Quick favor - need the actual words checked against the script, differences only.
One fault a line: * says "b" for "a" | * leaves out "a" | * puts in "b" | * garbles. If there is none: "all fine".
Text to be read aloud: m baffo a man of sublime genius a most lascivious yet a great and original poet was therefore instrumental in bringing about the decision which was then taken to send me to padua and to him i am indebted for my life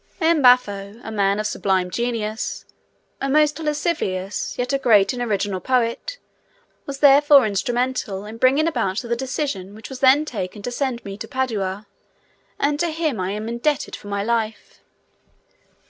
all fine